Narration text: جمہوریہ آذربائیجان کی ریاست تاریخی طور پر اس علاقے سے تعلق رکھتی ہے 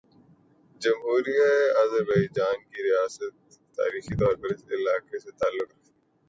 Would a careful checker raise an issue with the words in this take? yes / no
no